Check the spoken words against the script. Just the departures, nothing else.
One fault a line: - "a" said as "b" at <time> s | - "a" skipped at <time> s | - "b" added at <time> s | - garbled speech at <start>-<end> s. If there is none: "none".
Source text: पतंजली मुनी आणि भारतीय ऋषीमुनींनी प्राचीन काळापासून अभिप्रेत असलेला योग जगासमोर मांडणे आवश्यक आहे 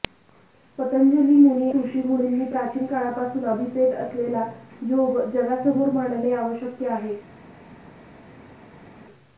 - "आणि भारतीय" skipped at 1.7 s